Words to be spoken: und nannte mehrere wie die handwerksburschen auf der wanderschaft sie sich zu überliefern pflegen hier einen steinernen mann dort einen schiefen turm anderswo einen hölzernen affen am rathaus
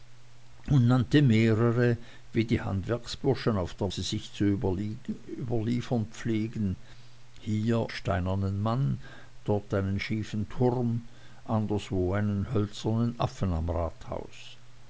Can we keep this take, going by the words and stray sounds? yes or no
no